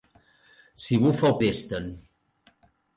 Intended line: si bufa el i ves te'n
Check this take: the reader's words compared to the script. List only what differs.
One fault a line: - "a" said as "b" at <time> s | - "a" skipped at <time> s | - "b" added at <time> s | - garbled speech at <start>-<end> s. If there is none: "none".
none